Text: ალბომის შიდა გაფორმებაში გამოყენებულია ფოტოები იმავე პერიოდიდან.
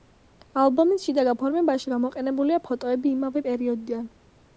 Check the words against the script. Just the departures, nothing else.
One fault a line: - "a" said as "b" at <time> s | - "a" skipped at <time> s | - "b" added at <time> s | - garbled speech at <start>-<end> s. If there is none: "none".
none